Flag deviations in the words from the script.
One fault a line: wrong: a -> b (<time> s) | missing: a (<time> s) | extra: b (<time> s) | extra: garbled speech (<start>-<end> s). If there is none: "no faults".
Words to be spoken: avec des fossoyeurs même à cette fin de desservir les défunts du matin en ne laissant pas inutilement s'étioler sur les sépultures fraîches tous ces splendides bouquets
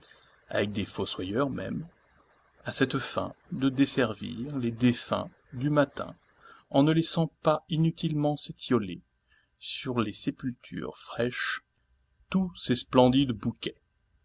no faults